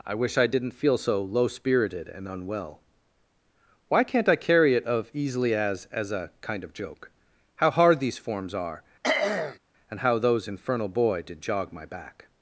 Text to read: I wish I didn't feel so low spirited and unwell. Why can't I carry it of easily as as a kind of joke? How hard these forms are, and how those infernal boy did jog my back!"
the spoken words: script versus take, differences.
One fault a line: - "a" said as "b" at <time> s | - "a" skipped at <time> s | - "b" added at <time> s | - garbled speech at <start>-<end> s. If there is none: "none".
none